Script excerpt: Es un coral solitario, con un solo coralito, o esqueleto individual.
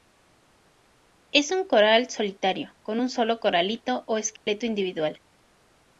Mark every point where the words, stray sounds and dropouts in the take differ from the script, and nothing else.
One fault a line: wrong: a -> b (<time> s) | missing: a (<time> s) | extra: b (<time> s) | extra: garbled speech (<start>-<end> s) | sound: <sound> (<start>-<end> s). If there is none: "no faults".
sound: dropout (4.4-4.5 s)